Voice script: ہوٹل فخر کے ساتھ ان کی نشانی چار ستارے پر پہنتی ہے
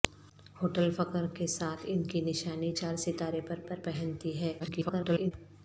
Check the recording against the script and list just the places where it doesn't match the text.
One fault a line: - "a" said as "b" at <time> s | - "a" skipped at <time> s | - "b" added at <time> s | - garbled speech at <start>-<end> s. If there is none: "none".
- "پر" added at 3.7 s
- garbled speech at 4.6-5.3 s